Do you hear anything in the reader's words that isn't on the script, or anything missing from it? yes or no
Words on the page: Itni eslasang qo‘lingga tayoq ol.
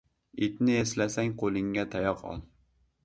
no